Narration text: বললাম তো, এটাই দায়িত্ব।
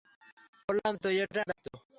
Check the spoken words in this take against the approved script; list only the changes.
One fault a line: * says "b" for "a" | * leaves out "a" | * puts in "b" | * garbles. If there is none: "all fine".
all fine